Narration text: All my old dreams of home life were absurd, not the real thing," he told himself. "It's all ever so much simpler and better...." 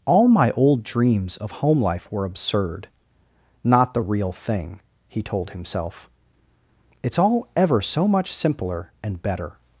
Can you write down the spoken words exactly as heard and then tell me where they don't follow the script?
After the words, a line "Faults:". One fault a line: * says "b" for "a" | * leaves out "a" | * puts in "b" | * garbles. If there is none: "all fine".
All my old dreams of home life were absurd, not the real thing," he told himself. "It's all ever so much simpler and better...."
Faults:
all fine